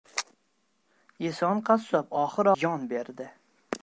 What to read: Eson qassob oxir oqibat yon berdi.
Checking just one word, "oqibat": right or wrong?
wrong